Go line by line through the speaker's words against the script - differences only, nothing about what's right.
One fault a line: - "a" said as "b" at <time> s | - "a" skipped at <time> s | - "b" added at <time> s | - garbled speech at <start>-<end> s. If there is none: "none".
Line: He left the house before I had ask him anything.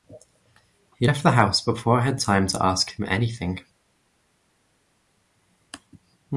- "time to" added at 2.2 s